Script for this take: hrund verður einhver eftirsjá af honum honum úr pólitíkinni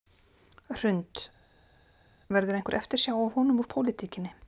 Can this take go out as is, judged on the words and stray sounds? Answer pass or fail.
fail